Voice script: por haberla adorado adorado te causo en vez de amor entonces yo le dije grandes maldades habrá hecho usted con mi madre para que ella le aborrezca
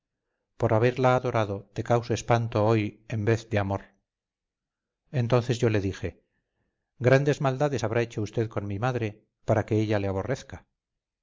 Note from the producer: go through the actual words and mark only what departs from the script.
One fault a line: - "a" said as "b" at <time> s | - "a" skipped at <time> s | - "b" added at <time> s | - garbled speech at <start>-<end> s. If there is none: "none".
- "adorado" skipped at 1.7 s
- "espanto hoy" added at 2.1 s